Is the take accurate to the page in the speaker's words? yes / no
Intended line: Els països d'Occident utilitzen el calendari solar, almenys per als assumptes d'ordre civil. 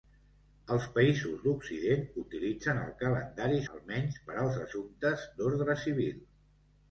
no